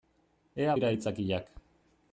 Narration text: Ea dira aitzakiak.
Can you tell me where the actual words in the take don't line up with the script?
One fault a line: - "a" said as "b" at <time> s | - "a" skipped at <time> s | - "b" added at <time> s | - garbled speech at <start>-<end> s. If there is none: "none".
none